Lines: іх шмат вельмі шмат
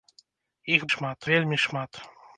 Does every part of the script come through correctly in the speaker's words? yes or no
yes